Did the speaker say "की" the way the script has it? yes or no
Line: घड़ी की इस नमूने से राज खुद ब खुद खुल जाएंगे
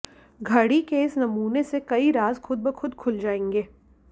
no